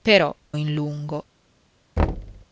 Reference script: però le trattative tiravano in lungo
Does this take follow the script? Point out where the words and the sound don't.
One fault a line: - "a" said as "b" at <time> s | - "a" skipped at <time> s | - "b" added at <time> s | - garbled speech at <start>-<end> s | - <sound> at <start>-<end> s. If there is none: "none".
- "le trattative tiravano" skipped at 0.3 s
- thud at 2.0-2.5 s